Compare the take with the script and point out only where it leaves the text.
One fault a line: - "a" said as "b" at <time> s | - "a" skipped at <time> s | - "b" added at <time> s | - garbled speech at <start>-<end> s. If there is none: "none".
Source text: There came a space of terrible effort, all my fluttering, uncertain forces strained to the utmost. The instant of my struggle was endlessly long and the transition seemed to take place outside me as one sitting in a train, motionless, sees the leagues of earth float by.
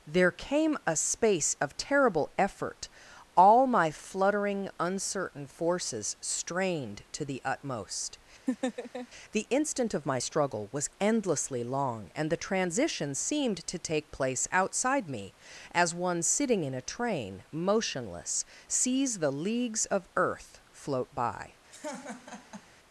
none